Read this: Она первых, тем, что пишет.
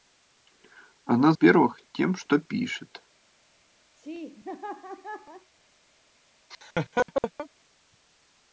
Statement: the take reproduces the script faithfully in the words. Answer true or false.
true